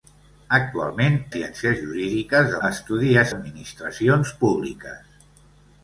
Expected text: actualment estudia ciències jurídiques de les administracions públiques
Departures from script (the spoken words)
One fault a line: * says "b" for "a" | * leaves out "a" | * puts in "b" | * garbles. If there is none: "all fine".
* leaves out "estudia"
* says "estudia" for "les"